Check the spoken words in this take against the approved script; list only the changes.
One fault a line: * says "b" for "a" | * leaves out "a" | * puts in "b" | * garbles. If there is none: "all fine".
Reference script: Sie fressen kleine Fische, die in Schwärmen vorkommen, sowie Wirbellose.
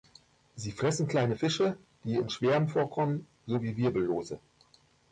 all fine